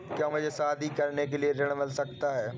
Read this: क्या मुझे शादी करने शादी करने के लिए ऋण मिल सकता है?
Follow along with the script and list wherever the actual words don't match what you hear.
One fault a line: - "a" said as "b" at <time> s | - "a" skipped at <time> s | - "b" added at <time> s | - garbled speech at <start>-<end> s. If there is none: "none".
- "शादी करने" skipped at 1.3 s